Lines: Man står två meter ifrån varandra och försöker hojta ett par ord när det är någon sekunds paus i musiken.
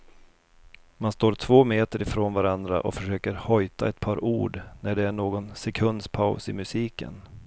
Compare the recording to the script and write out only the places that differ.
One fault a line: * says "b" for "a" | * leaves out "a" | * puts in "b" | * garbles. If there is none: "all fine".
all fine